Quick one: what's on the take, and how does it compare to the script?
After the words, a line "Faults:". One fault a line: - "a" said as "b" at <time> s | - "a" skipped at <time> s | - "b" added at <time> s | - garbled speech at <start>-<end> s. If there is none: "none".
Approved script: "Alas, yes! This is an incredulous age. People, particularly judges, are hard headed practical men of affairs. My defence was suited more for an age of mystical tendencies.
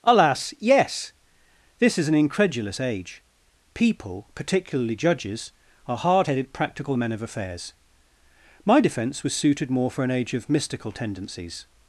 "Alas, yes! This is an incredulous age. People, particularly judges, are hard headed practical men of affairs. My defence was suited more for an age of mystical tendencies.
Faults:
none